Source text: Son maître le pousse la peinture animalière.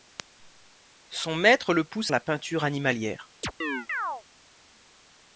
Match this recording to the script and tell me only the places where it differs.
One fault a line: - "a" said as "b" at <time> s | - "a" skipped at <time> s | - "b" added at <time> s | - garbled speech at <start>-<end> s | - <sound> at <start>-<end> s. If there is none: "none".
- chirp at 3.4-4.2 s